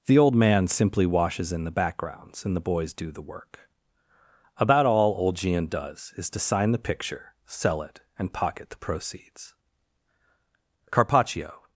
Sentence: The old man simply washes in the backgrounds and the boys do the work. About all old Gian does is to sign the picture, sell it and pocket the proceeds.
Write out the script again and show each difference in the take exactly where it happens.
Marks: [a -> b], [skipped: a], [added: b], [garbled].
The old man simply washes in the backgrounds and the boys do the work. About all old Gian does is to sign the picture, sell it and pocket the proceeds. [added: Carpaccio]